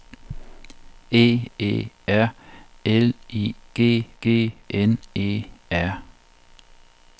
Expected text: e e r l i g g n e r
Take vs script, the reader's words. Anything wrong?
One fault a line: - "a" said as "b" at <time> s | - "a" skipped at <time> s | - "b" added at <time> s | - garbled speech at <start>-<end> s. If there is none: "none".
none